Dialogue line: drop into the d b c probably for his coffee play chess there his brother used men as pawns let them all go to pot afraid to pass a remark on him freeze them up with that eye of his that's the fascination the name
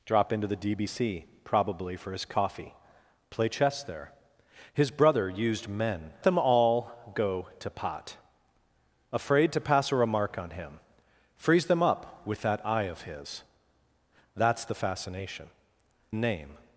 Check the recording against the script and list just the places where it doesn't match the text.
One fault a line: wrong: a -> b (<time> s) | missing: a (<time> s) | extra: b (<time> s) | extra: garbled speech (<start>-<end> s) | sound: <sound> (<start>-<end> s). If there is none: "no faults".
missing: as pawns let (6.1 s)
missing: the (15.5 s)